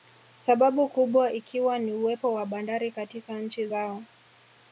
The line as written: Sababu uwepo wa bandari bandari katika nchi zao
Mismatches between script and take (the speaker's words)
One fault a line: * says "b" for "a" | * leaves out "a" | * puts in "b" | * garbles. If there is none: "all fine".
* puts in "kubwa ikiwa ni"
* leaves out "bandari"